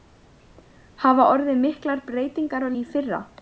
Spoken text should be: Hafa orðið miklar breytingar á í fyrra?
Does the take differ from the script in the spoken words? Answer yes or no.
no